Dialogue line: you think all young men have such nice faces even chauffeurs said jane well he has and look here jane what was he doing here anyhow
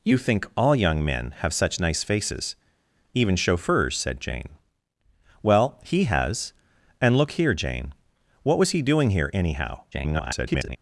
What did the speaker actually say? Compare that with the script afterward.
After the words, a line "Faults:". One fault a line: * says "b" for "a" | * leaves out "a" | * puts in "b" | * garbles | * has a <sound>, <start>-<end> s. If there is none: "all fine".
you think all young men have such nice faces even chauffeurs said jane well he has and look here jane what was he doing here anyhow [garbled]
Faults:
* garbles